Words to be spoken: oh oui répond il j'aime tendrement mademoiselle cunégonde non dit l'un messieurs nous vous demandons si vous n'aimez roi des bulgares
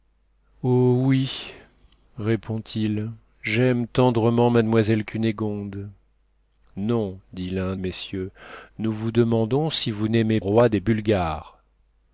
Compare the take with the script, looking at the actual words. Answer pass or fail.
pass